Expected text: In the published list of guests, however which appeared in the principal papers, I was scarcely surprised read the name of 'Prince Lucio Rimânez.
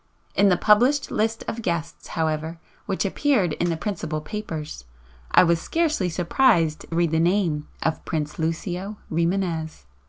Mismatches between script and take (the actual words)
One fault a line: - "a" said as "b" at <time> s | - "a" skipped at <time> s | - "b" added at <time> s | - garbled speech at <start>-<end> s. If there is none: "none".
none